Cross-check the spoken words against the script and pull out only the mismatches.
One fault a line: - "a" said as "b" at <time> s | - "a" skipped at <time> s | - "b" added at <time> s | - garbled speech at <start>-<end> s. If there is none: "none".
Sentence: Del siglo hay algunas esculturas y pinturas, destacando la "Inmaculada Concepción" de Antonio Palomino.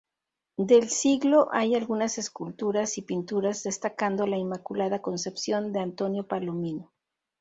none